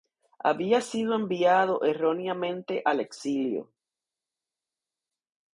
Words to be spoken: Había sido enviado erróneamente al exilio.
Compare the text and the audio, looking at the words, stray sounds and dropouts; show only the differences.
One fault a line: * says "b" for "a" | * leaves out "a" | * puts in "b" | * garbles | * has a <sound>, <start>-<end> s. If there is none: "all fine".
all fine